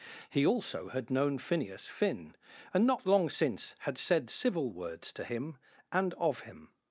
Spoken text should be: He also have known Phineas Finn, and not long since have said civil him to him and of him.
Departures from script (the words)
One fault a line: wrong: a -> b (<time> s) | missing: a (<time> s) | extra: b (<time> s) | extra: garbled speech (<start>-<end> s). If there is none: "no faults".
wrong: have -> had (0.9 s)
wrong: have -> had (3.8 s)
wrong: him -> words (4.7 s)